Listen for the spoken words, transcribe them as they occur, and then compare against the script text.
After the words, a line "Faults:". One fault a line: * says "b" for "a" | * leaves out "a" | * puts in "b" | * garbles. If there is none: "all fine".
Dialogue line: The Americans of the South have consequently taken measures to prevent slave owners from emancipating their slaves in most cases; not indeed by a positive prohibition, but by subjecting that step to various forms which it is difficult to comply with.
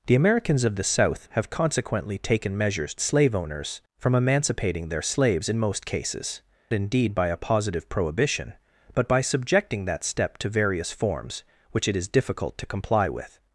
The Americans of the South have consequently taken measures slave owners from emancipating their slaves in most cases; indeed by a positive prohibition, but by subjecting that step to various forms which it is difficult to comply with.
Faults:
* leaves out "to prevent"
* leaves out "not"